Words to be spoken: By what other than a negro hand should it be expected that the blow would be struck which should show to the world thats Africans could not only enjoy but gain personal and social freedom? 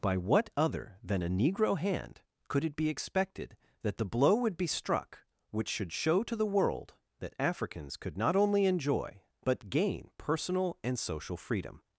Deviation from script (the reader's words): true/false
true